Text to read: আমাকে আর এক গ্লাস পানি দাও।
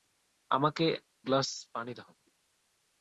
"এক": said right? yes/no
no